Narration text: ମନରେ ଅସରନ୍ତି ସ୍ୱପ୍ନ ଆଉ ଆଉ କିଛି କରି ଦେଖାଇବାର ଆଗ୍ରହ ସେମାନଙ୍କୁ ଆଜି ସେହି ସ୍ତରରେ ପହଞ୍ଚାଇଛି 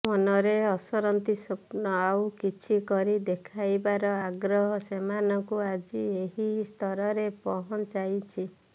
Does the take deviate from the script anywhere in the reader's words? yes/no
yes